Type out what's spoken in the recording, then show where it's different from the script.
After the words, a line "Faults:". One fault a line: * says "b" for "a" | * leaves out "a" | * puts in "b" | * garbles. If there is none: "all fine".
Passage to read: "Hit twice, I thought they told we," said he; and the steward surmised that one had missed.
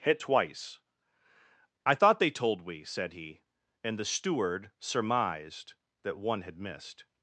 "Hit twice, I thought they told we," said he; and the steward surmised that one had missed.
Faults:
all fine